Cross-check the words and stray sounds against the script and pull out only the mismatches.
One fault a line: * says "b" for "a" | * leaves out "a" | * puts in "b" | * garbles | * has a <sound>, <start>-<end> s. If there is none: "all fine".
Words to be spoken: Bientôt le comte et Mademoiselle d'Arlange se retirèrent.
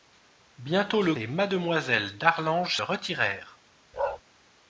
* leaves out "comte"
* leaves out "se"
* has a bark, 3.9-4.2 s